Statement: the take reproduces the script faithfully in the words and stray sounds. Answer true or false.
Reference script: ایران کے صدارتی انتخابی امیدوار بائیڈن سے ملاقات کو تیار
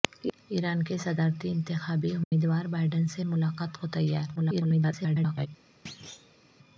false